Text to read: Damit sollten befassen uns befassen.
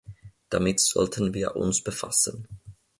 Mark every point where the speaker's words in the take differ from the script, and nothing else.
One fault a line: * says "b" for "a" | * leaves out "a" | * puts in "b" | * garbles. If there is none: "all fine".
* says "wir" for "befassen"